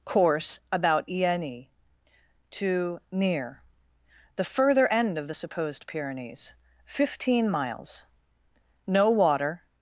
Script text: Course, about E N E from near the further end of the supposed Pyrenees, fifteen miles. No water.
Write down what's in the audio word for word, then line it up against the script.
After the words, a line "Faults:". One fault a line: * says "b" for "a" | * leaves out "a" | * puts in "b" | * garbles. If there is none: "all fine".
Course, about E N E to near the further end of the supposed Pyrenees, fifteen miles. No water.
Faults:
* says "to" for "from"